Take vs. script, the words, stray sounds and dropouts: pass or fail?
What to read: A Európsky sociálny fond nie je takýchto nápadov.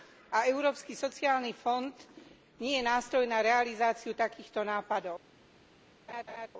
fail